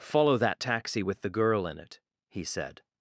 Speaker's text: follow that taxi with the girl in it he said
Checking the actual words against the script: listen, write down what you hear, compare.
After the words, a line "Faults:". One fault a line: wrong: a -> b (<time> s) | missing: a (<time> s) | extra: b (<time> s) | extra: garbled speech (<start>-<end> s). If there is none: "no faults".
follow that taxi with the girl in it he said
Faults:
no faults